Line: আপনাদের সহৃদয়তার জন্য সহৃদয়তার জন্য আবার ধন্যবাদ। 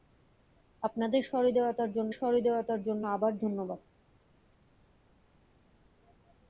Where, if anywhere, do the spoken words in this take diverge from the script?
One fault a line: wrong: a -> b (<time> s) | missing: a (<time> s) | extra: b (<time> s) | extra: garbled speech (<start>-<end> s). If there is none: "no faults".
no faults